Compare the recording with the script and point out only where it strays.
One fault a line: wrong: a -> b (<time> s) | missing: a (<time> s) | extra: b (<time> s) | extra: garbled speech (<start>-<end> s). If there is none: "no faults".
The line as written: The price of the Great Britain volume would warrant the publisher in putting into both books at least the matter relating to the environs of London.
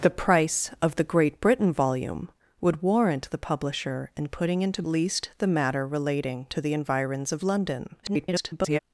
missing: both books at (4.8 s)
extra: garbled speech (8.0-8.8 s)